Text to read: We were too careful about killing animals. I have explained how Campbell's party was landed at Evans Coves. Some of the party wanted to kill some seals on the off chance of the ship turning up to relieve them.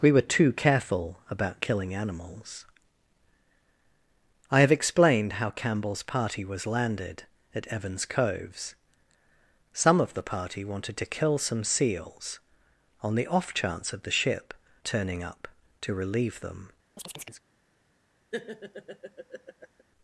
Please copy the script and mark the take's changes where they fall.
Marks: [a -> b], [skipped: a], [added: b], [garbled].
We were too careful about killing animals. I have explained how Campbell's party was landed at Evans Coves. Some of the party wanted to kill some seals on the off chance of the ship turning up to relieve them.